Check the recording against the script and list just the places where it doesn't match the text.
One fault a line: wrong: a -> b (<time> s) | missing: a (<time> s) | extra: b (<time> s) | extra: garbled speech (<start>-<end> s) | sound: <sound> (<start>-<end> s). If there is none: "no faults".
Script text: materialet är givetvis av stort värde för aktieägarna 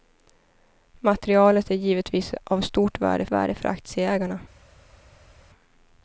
extra: värde (3.3 s)